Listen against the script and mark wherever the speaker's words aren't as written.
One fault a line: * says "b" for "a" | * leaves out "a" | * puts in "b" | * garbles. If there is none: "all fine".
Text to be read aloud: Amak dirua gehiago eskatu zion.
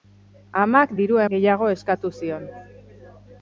all fine